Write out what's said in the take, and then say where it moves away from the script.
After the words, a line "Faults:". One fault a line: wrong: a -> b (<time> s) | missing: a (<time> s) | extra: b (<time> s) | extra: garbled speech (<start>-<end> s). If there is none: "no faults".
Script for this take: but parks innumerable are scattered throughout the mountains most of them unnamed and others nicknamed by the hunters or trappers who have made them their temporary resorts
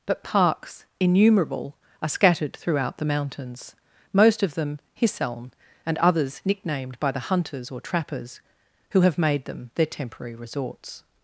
but parks innumerable are scattered throughout the mountains most of them hisseln and others nicknamed by the hunters or trappers who have made them their temporary resorts
Faults:
wrong: unnamed -> hisseln (4.9 s)